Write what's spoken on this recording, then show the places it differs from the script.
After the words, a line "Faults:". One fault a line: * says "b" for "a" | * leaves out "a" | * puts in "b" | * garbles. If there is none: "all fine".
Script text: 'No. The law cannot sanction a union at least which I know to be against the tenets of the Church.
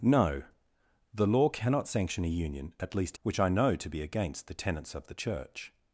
'No. The law cannot sanction a union at least which I know to be against the tenets of the Church.
Faults:
all fine